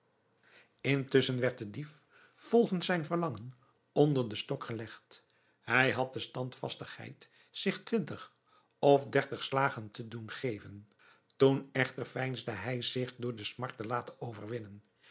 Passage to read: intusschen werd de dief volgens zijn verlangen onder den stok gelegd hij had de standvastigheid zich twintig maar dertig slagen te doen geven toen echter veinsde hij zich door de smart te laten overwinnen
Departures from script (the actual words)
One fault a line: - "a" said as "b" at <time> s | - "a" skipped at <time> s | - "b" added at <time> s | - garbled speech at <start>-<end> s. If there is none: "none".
- "maar" said as "of" at 8.8 s